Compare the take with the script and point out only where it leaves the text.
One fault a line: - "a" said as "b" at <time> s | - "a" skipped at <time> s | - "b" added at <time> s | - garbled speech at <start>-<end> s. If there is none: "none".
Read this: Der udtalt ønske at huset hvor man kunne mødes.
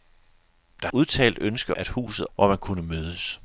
none